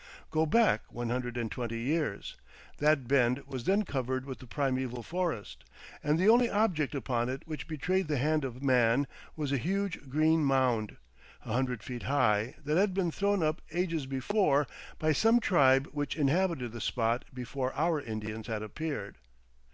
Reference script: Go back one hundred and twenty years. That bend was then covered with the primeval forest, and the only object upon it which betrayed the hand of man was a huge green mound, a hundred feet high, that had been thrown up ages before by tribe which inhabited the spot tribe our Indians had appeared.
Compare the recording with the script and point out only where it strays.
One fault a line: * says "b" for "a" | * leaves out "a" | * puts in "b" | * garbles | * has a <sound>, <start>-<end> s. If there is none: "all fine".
* puts in "some"
* says "before" for "tribe"